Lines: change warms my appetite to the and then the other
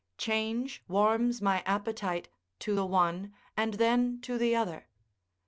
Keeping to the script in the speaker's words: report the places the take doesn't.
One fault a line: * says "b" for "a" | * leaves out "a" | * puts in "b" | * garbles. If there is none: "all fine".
* puts in "one"
* puts in "to"